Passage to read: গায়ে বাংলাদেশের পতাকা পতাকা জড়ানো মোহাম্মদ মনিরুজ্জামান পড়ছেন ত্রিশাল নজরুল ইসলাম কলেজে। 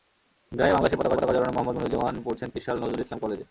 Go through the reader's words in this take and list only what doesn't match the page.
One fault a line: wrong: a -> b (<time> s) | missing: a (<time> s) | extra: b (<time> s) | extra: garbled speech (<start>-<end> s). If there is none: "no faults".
no faults